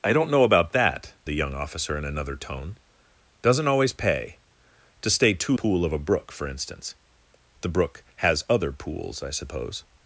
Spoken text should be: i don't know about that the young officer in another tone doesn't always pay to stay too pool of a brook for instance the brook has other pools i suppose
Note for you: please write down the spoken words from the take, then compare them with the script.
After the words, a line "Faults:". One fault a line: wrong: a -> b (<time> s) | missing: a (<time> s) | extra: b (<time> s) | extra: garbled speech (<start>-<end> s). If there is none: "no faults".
i don't know about that the young officer in another tone doesn't always pay to stay too pool of a brook for instance the brook has other pools i suppose
Faults:
no faults